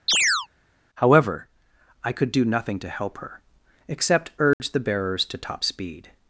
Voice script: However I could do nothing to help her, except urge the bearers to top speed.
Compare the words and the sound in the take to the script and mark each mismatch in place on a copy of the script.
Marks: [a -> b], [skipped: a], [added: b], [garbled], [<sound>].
[chirp] However I could do nothing to help her, except urge [dropout] the bearers to top speed.